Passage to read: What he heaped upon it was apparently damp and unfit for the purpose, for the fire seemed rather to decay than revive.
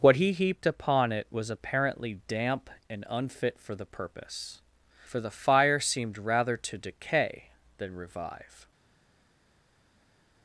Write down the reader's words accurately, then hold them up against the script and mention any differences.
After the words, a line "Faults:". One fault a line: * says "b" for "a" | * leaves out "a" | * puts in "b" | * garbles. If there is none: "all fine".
What he heaped upon it was apparently damp and unfit for the purpose, for the fire seemed rather to decay than revive.
Faults:
all fine